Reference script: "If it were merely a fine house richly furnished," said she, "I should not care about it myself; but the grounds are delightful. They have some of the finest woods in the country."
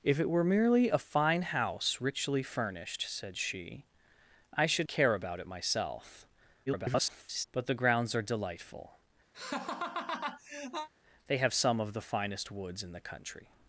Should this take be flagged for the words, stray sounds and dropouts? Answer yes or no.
yes